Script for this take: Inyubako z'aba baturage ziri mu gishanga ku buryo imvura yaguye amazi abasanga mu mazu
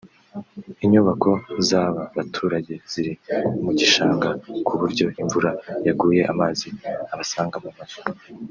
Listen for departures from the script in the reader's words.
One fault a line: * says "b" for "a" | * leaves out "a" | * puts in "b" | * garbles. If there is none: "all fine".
all fine